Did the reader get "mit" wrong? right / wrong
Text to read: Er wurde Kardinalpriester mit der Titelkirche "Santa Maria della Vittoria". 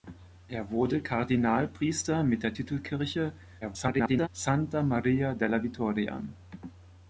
right